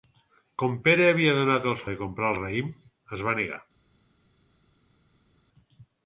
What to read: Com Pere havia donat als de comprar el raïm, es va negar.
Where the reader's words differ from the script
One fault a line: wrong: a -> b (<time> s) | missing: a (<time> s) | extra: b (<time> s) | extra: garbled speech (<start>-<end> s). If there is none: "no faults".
no faults